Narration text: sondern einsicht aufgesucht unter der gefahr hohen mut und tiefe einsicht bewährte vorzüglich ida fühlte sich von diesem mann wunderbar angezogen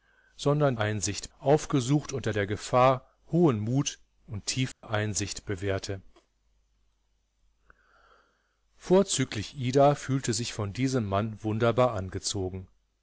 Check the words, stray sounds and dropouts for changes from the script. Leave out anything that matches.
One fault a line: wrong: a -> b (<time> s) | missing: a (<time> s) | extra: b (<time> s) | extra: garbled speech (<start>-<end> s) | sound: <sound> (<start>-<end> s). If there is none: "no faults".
sound: dropout (4.7-4.8 s)